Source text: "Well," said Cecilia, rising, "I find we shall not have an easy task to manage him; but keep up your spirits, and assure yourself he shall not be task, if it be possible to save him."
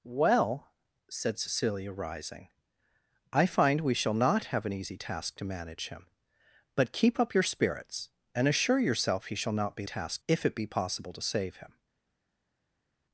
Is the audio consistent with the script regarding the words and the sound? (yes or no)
yes